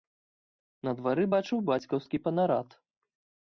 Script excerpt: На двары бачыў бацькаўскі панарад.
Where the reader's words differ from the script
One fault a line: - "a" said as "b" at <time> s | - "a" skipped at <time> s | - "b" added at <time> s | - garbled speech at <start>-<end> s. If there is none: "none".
none